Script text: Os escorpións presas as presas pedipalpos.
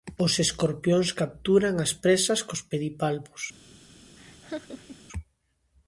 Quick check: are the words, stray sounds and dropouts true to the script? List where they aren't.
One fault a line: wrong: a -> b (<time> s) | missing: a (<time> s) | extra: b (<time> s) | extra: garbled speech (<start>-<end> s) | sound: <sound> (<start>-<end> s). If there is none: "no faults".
wrong: presas -> capturan (1.2 s)
extra: cos (2.5 s)
sound: laugh (4.2-5.1 s)